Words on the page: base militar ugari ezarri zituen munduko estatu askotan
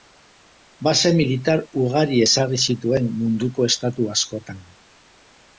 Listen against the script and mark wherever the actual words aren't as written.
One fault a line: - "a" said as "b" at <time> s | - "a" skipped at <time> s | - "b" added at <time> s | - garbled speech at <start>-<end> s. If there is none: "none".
none